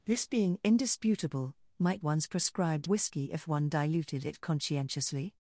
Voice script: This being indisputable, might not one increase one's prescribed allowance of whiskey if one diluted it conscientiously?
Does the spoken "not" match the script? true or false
false